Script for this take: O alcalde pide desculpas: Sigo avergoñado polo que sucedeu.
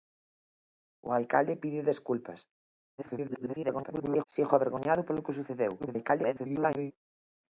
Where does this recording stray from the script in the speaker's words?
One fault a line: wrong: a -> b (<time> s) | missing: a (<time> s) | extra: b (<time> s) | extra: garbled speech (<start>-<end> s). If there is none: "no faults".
extra: garbled speech (3.0-4.2 s)
extra: garbled speech (5.8-6.9 s)